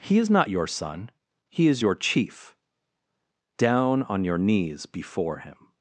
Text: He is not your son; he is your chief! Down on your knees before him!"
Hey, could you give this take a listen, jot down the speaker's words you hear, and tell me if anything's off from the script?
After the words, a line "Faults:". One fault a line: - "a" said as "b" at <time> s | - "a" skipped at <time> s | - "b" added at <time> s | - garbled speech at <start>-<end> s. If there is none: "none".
He is not your son; he is your chief! Down on your knees before him!"
Faults:
none